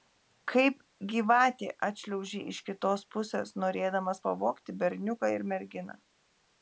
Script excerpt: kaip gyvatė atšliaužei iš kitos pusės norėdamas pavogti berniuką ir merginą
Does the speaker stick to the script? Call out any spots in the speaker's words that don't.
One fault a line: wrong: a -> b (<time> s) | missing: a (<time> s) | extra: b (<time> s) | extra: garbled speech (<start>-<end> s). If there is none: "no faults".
no faults